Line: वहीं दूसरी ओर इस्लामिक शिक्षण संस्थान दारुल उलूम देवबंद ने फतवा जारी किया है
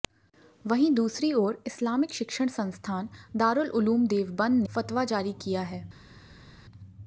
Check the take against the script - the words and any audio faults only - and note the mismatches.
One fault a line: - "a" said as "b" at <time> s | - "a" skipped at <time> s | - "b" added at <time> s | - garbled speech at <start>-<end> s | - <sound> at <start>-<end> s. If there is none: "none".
- "ने" skipped at 4.6 s